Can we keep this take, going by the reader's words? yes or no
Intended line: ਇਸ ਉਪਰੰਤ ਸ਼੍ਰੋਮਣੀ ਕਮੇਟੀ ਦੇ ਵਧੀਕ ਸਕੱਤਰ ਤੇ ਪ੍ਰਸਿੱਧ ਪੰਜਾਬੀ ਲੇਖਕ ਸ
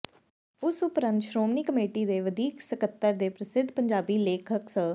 yes